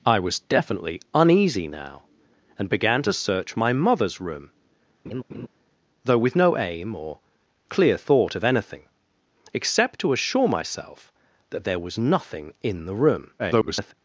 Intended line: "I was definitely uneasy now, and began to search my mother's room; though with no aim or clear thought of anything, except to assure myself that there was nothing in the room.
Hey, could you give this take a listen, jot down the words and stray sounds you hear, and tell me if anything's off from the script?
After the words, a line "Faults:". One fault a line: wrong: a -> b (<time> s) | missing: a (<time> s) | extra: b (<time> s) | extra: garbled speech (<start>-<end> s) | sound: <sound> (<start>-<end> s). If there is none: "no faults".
"I was definitely uneasy now, and began to search my mother's room; though with no aim or clear thought of anything, except to assure myself that there was nothing in the room. [garbled]
Faults:
sound: laugh (5.0-5.5 s)
extra: garbled speech (13.4-13.9 s)